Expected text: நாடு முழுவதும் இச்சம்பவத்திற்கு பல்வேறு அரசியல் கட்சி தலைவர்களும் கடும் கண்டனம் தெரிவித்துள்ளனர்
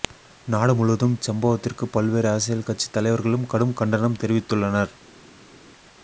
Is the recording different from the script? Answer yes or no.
no